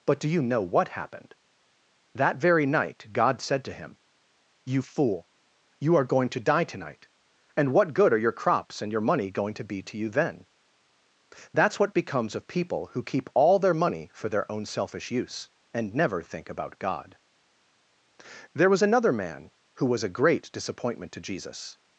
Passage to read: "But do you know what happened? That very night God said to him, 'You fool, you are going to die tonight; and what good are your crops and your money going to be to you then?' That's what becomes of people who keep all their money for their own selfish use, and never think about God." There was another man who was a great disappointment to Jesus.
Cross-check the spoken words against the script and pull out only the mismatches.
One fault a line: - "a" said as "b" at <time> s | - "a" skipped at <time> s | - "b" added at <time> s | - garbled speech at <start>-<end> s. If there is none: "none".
none